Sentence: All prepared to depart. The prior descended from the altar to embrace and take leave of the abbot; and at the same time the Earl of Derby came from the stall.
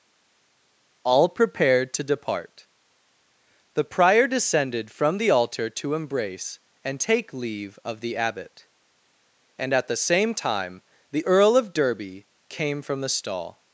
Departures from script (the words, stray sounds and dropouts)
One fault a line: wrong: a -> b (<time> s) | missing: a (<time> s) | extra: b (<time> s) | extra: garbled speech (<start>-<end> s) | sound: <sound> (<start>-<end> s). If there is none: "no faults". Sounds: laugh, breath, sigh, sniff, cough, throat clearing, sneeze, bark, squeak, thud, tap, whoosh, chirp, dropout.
no faults